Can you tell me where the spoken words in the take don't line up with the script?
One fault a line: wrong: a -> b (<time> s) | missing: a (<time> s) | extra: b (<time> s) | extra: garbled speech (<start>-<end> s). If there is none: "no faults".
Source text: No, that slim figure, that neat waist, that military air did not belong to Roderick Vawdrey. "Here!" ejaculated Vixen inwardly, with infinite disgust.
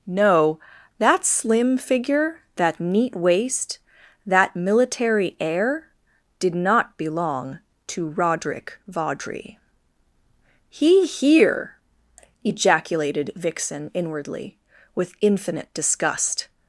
extra: He (10.7 s)